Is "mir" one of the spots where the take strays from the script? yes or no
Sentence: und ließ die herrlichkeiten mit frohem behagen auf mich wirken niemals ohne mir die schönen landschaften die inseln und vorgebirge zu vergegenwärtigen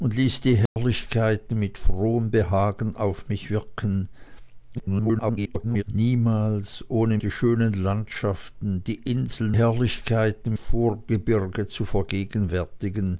yes